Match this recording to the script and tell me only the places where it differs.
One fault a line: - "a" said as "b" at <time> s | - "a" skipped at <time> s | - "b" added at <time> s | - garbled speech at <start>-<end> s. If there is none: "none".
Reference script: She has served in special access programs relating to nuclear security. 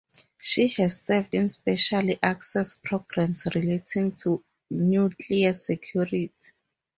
none